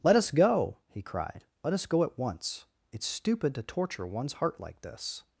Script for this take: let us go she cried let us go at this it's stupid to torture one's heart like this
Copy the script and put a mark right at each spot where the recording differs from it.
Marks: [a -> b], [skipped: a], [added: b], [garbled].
let us go [she -> he] cried let us go at [this -> once] it's stupid to torture one's heart like this